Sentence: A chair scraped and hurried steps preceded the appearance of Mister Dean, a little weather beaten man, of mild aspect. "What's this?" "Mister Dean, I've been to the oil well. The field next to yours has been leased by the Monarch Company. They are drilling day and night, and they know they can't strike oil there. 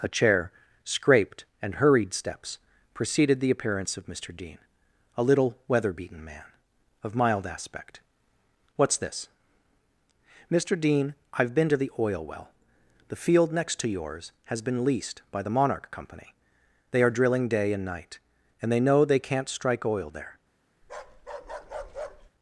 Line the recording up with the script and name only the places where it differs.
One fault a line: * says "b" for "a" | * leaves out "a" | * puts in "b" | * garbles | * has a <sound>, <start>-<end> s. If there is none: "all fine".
* has a bark, 20.8-22.3 s